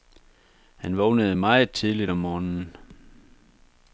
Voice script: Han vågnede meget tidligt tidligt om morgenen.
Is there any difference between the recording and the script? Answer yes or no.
yes